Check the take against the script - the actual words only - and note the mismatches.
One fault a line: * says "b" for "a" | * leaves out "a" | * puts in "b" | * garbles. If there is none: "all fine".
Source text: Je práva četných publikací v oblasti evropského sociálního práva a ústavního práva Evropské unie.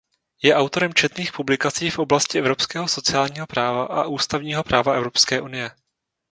* says "autorem" for "práva"